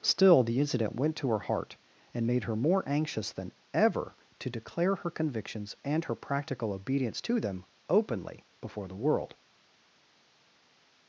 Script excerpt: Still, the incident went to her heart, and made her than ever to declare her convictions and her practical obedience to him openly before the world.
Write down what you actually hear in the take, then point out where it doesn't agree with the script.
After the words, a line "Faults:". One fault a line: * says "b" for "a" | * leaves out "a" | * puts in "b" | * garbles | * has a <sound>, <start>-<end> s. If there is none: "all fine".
Still, the incident went to her heart, and made her more anxious than ever to declare her convictions and her practical obedience to them openly before the world.
Faults:
* puts in "more anxious"
* says "them" for "him"